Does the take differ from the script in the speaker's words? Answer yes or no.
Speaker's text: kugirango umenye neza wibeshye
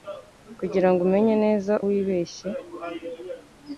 no